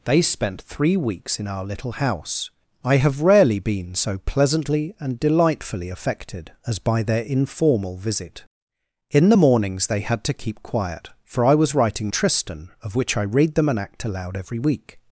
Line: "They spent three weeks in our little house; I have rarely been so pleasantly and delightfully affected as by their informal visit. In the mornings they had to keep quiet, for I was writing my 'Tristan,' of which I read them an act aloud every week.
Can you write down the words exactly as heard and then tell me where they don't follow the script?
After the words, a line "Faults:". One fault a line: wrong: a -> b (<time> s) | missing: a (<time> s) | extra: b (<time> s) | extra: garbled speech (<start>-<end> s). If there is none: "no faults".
"They spent three weeks in our little house; I have rarely been so pleasantly and delightfully affected as by their informal visit. In the mornings they had to keep quiet, for I was writing 'Tristan,' of which I read them an act aloud every week.
Faults:
missing: my (12.1 s)